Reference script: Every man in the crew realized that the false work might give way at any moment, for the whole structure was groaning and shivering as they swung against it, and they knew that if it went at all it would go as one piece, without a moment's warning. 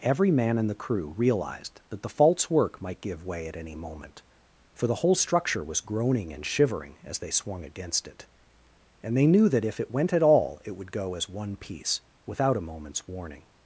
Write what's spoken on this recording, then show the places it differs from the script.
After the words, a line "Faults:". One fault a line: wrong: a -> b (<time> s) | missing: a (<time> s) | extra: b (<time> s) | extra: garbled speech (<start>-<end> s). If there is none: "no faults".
Every man in the crew realized that the false work might give way at any moment, for the whole structure was groaning and shivering as they swung against it, and they knew that if it went at all it would go as one piece, without a moment's warning.
Faults:
no faults